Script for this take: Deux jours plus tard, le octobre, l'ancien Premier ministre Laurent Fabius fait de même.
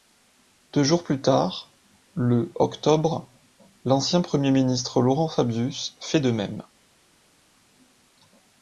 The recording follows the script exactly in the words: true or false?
true